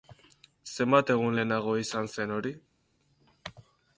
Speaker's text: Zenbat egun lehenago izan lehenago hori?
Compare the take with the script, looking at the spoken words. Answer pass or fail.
fail